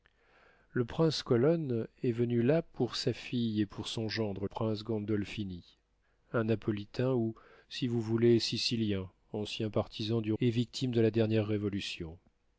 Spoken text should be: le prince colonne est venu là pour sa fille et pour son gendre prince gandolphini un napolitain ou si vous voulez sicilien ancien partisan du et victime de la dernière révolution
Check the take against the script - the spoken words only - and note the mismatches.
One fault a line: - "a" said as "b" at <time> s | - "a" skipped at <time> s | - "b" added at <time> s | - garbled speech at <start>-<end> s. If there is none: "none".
none